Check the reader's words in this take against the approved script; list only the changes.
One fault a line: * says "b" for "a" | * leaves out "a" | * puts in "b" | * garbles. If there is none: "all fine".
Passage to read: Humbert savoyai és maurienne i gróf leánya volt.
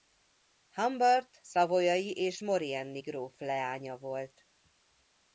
all fine